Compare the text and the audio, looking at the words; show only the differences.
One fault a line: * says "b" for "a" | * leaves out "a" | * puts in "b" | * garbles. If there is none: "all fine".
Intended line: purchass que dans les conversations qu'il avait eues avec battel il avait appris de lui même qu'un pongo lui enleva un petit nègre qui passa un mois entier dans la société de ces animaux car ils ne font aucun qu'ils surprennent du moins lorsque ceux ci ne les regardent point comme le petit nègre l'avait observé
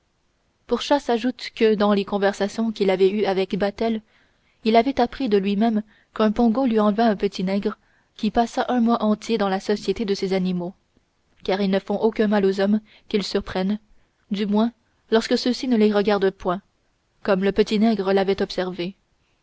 * puts in "ajoute"
* puts in "mal aux hommes"